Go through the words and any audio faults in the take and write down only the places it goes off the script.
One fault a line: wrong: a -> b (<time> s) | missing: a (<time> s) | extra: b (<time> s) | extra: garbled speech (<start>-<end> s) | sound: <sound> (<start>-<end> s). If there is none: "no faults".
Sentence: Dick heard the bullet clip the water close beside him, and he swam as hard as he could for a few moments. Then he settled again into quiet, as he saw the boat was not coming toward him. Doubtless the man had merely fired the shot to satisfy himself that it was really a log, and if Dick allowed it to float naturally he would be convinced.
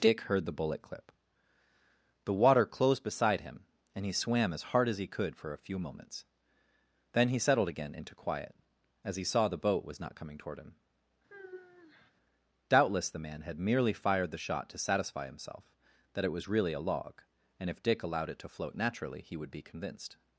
wrong: close -> closed (2.6 s)
sound: sigh (11.3-12.1 s)